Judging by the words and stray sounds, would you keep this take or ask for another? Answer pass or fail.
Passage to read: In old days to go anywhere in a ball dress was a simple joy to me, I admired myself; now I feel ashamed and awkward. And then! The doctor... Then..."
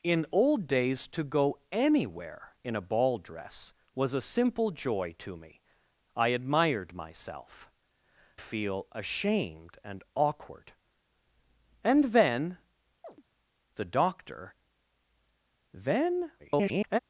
fail